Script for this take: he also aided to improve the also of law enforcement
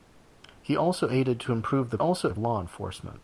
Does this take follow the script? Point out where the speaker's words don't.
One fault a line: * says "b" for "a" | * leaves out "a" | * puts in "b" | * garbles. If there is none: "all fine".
all fine